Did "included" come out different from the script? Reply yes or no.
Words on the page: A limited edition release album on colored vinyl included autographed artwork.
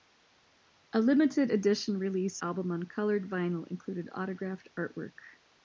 no